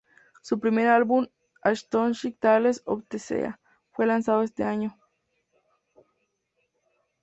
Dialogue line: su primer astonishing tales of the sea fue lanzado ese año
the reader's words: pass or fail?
fail